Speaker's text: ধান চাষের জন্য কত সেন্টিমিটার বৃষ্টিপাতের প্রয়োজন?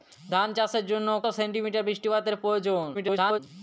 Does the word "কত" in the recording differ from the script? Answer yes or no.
yes